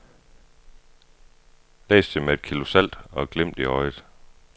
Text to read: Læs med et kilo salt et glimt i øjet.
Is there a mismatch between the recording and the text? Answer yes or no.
yes